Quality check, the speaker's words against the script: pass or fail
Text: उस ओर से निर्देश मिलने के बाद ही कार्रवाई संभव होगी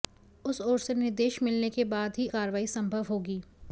pass